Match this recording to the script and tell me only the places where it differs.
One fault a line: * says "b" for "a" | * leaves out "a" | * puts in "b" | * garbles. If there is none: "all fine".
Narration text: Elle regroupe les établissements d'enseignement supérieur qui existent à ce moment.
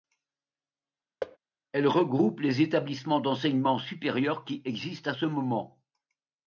all fine